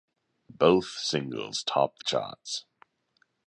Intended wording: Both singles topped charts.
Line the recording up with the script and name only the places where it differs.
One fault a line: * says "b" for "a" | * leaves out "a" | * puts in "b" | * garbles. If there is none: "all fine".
all fine